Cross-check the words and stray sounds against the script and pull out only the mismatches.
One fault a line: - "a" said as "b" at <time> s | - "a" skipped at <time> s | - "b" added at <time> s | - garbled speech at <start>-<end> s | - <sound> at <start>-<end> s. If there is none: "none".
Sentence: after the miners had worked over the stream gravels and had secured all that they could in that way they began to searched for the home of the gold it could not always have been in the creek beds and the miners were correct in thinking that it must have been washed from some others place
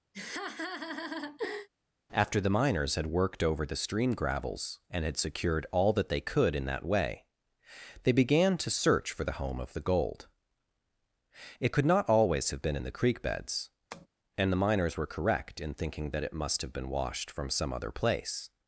- laugh at 0.1-1.7 s
- "searched" said as "search" at 8.7 s
- tap at 13.9-14.1 s
- "others" said as "other" at 17.7 s